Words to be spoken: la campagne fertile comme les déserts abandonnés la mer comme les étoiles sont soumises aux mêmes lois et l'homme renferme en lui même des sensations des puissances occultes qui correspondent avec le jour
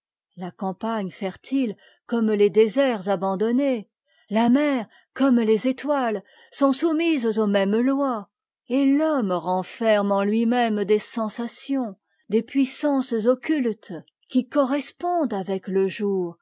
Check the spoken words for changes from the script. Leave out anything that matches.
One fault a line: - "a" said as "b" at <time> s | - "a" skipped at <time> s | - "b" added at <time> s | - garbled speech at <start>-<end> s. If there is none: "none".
none